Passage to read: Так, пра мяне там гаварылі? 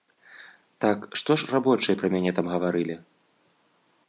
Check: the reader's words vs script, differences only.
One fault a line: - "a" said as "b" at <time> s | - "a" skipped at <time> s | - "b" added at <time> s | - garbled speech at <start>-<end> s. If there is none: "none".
- "што ж рабочыя" added at 1.2 s